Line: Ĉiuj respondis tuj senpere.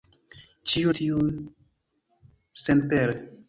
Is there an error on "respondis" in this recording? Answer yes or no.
yes